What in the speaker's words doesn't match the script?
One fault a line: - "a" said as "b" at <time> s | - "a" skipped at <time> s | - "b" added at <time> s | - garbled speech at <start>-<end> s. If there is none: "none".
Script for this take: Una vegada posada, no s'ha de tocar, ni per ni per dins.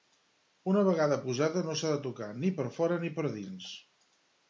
- "fora" added at 2.8 s